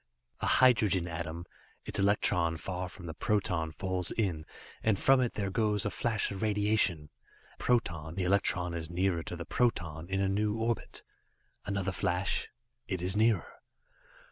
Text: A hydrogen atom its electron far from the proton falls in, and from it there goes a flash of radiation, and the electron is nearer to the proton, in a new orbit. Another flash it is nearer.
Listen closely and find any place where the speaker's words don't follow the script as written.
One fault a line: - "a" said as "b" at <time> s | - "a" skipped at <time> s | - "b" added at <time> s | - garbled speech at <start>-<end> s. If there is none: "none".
- "and" said as "proton" at 7.5 s